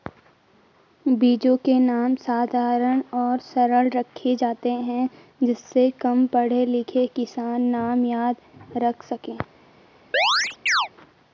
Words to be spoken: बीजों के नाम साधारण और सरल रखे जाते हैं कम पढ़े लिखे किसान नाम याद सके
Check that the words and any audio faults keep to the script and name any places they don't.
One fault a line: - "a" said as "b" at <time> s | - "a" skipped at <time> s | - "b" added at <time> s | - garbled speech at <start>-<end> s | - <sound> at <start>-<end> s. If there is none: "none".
- "जिससे" added at 5.4 s
- "रख" added at 8.8 s
- chirp at 10.1-10.9 s